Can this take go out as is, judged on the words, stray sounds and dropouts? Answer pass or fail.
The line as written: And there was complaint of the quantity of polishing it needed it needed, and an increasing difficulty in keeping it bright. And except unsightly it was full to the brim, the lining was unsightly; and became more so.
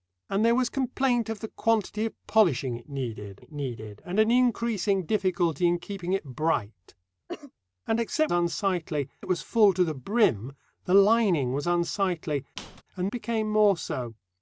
fail